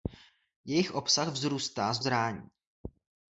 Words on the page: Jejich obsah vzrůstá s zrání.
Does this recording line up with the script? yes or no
yes